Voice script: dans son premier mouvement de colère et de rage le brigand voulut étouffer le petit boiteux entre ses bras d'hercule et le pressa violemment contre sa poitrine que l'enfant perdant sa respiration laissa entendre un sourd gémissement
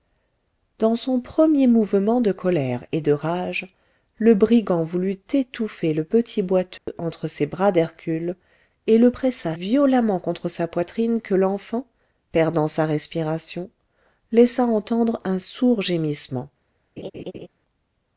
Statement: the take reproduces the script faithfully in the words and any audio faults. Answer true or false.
false